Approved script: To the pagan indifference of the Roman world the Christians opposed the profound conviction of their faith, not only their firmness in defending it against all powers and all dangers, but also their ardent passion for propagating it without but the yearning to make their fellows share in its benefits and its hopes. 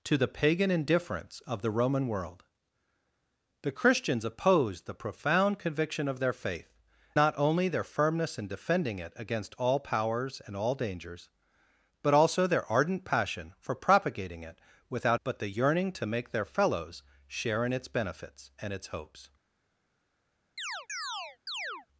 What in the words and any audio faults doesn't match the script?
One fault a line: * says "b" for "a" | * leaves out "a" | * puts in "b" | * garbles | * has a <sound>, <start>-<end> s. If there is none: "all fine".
* has a chirp, 20.6-21.9 s